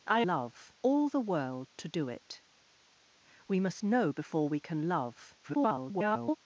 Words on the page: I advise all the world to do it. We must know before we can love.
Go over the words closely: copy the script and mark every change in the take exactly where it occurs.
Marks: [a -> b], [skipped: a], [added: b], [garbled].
I [advise -> love] all the world to do it. We must know before we can love. [garbled]